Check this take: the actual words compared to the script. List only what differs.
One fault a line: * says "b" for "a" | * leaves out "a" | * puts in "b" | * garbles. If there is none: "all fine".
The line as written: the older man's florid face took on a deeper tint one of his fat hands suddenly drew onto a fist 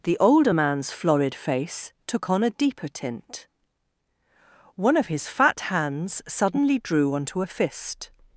all fine